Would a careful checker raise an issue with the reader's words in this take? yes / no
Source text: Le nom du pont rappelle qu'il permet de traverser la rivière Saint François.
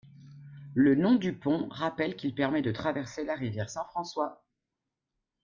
no